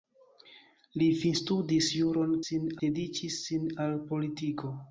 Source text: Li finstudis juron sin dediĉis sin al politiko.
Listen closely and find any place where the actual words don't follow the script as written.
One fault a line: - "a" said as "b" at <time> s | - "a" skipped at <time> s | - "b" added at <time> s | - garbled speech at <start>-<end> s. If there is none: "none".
none